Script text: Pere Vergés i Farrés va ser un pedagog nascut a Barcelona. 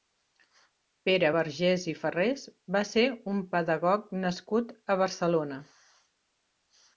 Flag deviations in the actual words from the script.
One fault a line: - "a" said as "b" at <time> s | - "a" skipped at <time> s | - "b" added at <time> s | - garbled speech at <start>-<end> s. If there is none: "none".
none